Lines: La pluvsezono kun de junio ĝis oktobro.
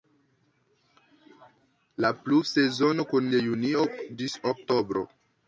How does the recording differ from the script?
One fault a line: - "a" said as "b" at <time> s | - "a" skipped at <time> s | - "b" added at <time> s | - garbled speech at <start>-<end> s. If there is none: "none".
none